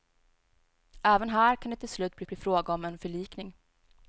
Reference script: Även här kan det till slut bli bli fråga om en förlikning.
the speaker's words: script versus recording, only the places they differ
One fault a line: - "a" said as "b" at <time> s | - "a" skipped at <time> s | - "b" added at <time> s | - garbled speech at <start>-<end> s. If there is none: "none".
none